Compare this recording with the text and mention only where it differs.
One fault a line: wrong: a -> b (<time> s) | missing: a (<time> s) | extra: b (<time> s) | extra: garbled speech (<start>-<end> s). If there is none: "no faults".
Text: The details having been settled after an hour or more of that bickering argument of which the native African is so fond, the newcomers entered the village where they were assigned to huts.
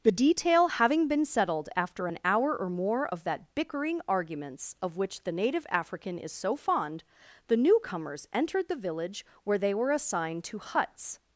wrong: details -> detail (0.1 s)
wrong: argument -> arguments (4.1 s)